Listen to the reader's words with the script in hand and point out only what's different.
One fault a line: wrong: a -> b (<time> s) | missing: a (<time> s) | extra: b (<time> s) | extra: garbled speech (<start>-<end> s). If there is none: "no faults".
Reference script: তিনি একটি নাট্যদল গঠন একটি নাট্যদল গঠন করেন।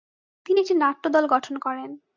missing: একটি নাট্যদল গঠন (1.5 s)